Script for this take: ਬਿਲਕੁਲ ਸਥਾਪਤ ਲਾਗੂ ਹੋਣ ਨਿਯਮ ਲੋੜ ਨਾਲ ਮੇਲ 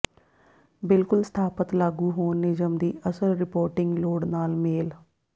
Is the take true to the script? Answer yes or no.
no